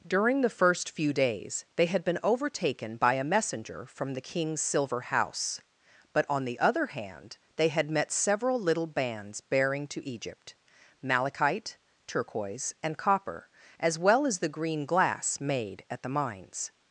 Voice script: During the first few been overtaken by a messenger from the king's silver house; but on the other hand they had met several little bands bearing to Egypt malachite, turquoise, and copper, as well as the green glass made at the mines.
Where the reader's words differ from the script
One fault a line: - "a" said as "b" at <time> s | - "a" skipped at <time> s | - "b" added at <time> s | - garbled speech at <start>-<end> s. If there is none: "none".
- "days they had" added at 1.1 s